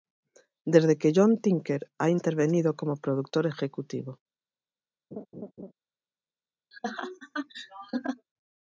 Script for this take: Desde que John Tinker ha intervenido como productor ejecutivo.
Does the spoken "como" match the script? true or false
true